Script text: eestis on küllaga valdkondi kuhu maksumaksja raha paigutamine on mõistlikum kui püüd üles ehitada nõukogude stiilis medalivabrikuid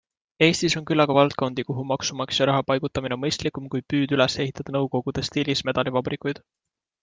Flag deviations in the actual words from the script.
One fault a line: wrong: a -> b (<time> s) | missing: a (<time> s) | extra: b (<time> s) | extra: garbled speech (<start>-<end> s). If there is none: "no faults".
no faults